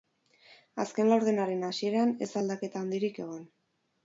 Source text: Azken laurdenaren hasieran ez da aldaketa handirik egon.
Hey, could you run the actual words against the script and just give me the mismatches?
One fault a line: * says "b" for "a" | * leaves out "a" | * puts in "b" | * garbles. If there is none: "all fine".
all fine